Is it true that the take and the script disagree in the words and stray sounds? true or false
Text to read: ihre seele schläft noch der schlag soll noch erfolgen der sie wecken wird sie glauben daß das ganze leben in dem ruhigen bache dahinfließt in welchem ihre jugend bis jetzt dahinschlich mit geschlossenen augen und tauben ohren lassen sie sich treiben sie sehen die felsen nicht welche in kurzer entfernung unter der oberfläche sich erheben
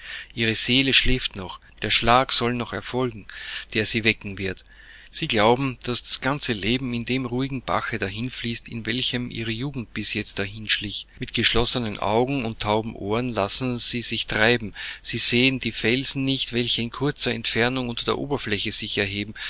false